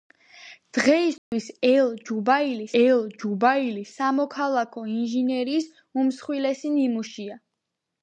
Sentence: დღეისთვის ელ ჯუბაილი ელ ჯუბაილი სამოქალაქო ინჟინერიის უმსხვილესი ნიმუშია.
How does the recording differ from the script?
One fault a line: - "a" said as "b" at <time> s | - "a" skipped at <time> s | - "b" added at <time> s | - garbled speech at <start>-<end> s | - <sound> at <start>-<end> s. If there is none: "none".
- dropout at 1.2-1.3 s